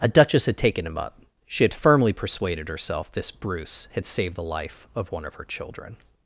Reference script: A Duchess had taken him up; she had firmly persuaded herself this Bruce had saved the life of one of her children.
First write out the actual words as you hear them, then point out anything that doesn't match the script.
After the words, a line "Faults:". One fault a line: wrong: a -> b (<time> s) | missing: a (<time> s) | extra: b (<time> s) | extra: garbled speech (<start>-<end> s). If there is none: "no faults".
A Duchess had taken him up; she had firmly persuaded herself this Bruce had saved the life of one of her children.
Faults:
no faults